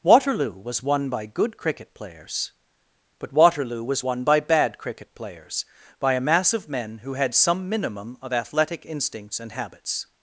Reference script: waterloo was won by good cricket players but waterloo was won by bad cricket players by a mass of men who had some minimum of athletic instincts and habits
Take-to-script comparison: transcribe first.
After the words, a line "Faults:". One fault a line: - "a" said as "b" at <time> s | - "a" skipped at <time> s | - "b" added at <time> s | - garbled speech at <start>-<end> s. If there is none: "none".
waterloo was won by good cricket players but waterloo was won by bad cricket players by a mass of men who had some minimum of athletic instincts and habits
Faults:
none